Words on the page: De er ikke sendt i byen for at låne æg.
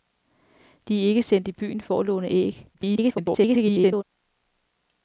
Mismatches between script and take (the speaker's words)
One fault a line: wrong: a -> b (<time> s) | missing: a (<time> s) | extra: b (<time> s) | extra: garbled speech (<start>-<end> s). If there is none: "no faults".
extra: garbled speech (2.7-4.0 s)